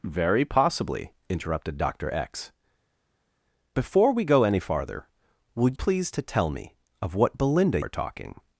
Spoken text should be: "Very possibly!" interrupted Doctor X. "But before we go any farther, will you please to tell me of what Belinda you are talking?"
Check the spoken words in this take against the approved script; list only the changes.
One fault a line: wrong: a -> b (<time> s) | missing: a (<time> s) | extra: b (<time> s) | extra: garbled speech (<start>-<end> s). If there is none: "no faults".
missing: But (2.5 s)
missing: you (5.7 s)
missing: you (7.8 s)